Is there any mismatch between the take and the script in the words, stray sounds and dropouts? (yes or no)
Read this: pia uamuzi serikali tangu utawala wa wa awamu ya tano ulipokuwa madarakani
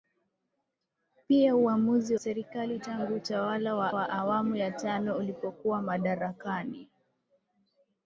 no